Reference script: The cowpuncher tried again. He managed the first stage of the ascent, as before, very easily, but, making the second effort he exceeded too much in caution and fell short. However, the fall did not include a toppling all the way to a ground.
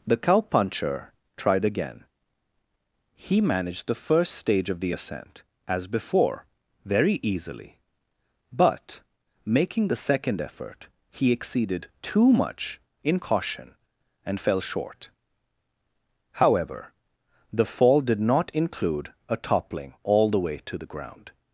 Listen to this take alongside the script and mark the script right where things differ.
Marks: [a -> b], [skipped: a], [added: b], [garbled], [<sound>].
The cowpuncher tried again. He managed the first stage of the ascent, as before, very easily, but, making the second effort he exceeded too much in caution and fell short. However, the fall did not include a toppling all the way to [a -> the] ground.